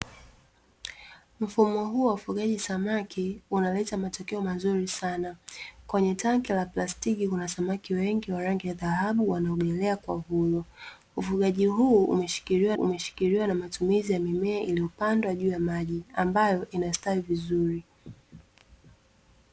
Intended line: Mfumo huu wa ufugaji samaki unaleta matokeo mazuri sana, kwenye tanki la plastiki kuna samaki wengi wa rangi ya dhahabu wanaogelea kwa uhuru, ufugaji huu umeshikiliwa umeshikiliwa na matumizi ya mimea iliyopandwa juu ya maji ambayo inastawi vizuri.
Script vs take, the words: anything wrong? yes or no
no